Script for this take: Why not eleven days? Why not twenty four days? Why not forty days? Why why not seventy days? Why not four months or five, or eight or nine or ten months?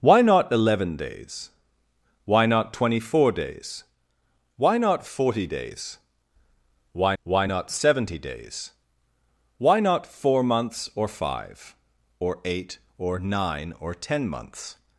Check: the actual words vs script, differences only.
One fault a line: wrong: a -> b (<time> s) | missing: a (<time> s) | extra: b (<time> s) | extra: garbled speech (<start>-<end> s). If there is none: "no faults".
no faults